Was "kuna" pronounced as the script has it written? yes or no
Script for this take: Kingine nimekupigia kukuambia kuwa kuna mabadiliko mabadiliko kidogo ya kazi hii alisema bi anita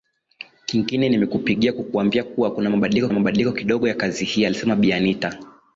yes